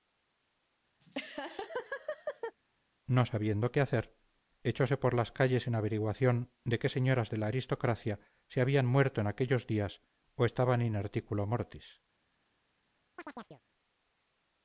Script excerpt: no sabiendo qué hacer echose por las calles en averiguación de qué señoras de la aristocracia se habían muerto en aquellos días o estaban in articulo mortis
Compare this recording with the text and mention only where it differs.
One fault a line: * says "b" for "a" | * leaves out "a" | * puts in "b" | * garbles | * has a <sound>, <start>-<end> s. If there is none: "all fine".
* has a laugh, 1.0-2.6 s
* has a chirp, 13.2-13.6 s